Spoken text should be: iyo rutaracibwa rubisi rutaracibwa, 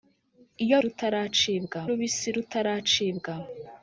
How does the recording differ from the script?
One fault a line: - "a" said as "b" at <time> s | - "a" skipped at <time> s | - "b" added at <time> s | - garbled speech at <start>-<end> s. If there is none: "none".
none